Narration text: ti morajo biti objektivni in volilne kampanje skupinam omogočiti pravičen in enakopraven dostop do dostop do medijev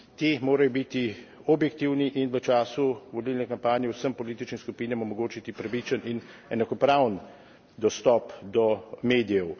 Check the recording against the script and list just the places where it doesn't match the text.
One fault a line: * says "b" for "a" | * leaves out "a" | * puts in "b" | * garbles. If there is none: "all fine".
* puts in "v času"
* puts in "vsem političnim"
* leaves out "dostop do"